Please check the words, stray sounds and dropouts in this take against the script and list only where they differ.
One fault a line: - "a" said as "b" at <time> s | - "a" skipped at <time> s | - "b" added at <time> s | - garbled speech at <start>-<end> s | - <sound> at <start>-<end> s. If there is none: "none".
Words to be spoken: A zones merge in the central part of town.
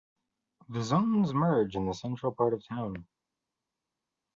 - "A" said as "The" at 0.7 s